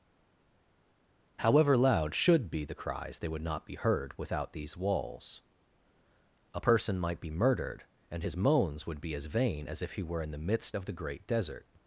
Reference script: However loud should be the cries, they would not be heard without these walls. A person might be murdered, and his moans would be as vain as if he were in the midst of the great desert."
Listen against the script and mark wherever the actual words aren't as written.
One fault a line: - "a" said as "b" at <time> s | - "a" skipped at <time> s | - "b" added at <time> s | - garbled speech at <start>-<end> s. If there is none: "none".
none